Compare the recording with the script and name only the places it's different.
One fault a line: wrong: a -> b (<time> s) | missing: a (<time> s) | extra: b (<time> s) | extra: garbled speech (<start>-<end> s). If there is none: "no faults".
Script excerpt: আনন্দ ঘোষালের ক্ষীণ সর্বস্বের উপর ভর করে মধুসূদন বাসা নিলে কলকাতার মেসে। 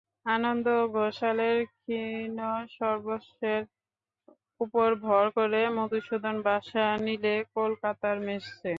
no faults